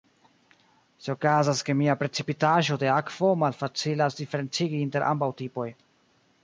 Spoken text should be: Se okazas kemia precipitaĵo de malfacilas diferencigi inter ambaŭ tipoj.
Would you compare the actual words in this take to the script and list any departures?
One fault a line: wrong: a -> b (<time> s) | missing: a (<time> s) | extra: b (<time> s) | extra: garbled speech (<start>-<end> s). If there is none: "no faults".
extra: akvo (3.0 s)